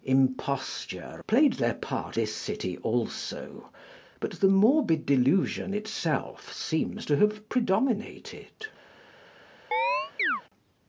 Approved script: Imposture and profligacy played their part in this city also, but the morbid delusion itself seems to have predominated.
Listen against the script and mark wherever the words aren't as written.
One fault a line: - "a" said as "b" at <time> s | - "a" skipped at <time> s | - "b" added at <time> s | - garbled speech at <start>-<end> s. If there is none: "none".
- "and profligacy" skipped at 1.2 s
- "in" skipped at 2.2 s